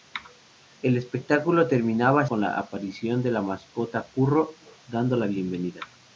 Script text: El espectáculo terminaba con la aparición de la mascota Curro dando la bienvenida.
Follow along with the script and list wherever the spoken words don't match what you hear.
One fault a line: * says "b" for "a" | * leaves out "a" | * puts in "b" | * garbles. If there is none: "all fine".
all fine